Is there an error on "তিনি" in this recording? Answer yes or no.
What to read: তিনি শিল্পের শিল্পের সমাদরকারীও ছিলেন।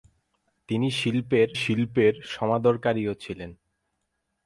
no